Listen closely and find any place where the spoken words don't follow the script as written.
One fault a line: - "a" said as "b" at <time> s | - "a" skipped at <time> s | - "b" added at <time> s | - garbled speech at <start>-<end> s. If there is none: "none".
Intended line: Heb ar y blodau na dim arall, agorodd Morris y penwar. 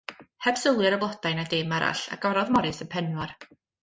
- "sylwi" added at 0.6 s